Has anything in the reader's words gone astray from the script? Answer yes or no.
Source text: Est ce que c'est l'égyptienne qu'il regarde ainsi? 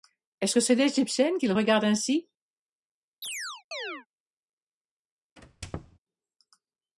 no